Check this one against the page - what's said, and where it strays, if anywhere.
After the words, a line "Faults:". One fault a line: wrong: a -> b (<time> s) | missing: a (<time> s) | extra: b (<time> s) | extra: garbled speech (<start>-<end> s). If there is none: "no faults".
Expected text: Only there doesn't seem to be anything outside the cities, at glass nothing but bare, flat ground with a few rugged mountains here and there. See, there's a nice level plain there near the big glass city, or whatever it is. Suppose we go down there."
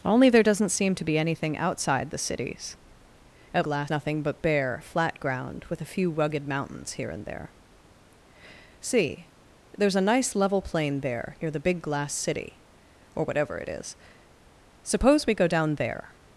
Only there doesn't seem to be anything outside the cities, at glass nothing but bare, flat ground with a few rugged mountains here and there. See, there's a nice level plain there near the big glass city, or whatever it is. Suppose we go down there."
Faults:
no faults